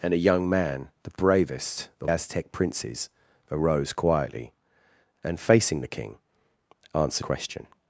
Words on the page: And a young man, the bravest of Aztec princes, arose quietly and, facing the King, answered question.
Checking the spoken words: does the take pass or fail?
pass